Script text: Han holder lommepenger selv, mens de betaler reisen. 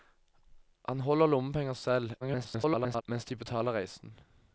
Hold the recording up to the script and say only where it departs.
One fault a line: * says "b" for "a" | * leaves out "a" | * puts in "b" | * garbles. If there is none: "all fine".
* garbles